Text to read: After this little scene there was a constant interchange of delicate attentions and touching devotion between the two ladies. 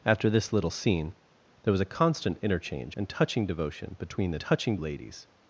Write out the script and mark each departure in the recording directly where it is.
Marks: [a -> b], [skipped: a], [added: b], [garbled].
After this little scene there was a constant interchange [skipped: of delicate attentions] and touching devotion between the [two -> touching] ladies.